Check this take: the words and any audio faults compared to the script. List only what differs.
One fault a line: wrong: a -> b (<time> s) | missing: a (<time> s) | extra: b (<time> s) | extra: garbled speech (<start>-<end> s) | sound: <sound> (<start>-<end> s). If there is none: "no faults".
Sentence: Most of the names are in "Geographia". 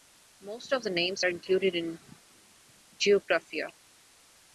extra: included (1.3 s)